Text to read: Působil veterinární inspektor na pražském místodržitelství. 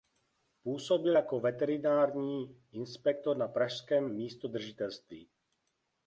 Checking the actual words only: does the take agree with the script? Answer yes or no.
no